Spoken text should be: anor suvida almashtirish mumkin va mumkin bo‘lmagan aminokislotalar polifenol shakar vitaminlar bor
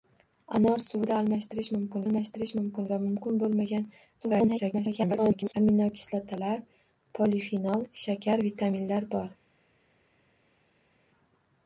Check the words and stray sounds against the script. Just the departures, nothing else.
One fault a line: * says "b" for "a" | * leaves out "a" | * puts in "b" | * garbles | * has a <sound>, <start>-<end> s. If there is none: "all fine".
* puts in "almashtirish mumkin"
* garbles